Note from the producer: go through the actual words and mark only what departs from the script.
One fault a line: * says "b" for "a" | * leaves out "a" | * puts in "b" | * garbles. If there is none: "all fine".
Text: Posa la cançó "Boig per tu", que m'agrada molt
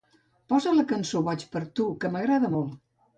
all fine